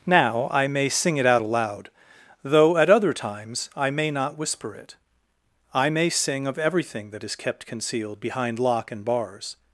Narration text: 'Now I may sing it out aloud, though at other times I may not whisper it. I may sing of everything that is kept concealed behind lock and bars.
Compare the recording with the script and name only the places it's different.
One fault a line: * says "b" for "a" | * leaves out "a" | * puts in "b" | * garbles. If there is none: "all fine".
all fine